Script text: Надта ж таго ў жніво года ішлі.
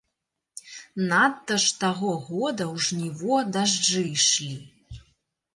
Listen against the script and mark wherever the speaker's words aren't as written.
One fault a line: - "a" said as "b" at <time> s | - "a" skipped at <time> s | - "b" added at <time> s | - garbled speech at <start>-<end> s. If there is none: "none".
- "года" added at 2.3 s
- "года" said as "дажджы" at 3.6 s